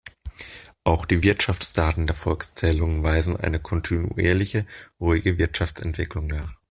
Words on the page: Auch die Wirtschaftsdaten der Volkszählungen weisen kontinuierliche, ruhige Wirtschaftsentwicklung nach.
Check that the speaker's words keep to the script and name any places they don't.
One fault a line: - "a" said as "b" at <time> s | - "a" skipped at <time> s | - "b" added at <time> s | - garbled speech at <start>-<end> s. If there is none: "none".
- "eine" added at 3.3 s